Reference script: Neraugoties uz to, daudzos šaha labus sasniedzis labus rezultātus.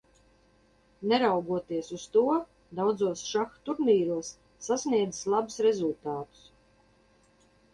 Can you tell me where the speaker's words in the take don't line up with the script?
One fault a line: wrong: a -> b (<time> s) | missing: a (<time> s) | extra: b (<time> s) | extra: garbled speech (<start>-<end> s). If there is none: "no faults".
wrong: labus -> turnīros (3.7 s)